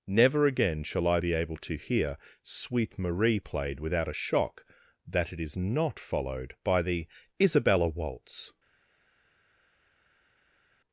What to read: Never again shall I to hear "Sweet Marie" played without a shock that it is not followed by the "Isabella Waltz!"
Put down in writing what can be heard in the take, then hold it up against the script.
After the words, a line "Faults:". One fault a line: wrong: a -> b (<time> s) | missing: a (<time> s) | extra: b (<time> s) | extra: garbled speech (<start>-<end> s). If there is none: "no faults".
Never again shall I be able to hear "Sweet Marie" played without a shock that it is not followed by the "Isabella Waltz!"
Faults:
extra: be able (1.2 s)